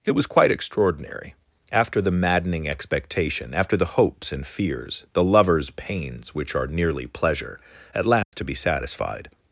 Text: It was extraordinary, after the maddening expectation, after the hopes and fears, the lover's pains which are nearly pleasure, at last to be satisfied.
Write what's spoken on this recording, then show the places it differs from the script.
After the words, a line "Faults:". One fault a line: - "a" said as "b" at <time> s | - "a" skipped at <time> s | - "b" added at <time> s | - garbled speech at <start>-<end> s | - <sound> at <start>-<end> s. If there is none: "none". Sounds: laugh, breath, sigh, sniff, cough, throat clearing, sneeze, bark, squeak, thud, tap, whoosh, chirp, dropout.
It was quite extraordinary, after the maddening expectation, after the hopes and fears, the lover's pains which are nearly pleasure, at last to be satisfied.
Faults:
- "quite" added at 0.2 s
- dropout at 8.2-8.3 s